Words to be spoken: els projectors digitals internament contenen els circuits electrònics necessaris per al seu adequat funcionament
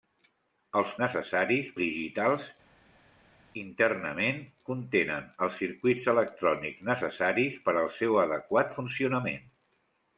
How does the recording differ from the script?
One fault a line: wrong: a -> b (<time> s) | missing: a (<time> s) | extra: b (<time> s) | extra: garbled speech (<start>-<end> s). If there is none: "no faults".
wrong: projectors -> necessaris (1.1 s)